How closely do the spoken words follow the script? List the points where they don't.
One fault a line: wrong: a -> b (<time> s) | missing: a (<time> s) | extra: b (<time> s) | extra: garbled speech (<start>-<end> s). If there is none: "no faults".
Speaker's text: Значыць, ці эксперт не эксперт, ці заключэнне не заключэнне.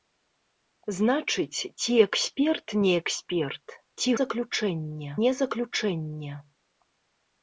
no faults